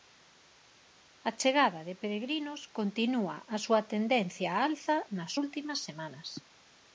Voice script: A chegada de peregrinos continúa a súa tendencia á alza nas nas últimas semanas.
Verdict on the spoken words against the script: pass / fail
fail